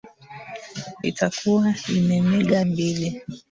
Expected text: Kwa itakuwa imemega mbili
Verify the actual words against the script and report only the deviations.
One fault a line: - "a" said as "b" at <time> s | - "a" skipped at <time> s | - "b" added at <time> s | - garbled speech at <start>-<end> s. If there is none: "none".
none